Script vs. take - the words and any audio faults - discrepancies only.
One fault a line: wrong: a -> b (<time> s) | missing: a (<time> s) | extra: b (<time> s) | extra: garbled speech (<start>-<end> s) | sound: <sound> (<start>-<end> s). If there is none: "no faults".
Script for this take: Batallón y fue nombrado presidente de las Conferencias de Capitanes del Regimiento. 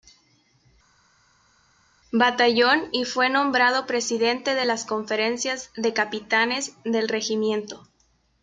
no faults